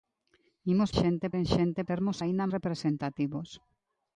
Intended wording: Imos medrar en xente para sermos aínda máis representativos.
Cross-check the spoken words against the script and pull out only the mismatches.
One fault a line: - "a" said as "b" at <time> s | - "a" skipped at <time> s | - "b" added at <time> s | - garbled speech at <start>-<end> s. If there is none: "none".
- "medrar" said as "xente" at 1.0 s
- "para" skipped at 1.8 s
- "máis" skipped at 2.4 s